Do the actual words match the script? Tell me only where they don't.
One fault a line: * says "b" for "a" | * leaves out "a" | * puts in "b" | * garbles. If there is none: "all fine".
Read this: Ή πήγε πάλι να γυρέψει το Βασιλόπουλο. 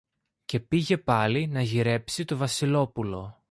* says "Και" for "Ή"